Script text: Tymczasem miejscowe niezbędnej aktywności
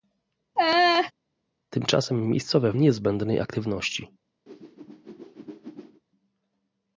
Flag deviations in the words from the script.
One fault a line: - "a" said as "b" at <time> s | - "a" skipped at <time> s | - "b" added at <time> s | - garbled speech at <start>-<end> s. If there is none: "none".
none